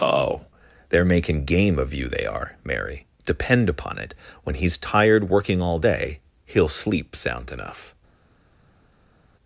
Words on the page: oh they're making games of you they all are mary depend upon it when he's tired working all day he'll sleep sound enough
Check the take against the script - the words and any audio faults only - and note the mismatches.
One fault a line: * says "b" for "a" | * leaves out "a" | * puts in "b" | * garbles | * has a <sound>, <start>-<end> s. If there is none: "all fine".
* says "game" for "games"
* leaves out "all"